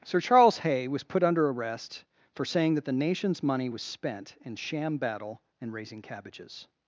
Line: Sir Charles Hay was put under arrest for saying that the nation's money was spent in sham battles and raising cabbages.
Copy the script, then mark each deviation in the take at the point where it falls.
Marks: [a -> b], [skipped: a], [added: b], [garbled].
Sir Charles Hay was put under arrest for saying that the nation's money was spent in sham [battles -> battle] and raising cabbages.